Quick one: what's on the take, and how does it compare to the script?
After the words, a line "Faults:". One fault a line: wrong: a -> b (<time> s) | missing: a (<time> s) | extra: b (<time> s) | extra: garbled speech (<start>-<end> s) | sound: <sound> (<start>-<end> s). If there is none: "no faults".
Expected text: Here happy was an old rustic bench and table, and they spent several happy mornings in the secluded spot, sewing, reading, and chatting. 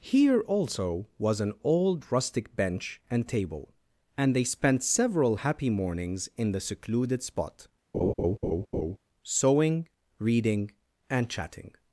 Here also was an old rustic bench and table, and they spent several happy mornings in the secluded spot, sewing, reading, and chatting.
Faults:
wrong: happy -> also (0.4 s)
sound: laugh (7.9-9.0 s)